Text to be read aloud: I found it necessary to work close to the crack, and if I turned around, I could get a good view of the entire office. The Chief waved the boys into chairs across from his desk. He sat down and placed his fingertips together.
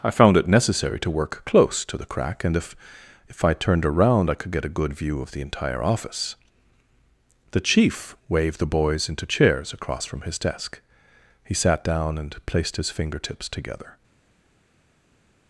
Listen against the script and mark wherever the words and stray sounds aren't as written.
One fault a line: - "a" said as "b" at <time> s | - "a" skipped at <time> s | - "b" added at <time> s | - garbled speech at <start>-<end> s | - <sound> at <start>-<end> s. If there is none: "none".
- "if" added at 3.3 s